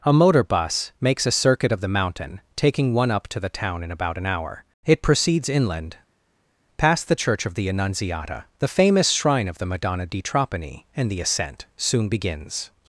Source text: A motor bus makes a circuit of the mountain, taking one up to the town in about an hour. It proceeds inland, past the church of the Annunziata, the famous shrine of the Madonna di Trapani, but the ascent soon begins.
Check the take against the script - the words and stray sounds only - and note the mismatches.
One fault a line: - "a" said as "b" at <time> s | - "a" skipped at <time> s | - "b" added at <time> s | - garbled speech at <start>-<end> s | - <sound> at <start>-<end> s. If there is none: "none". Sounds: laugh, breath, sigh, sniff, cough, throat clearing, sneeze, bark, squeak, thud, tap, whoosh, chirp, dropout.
- "but" said as "and" at 10.9 s